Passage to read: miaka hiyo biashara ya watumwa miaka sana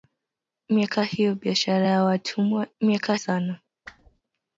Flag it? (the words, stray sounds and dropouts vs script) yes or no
yes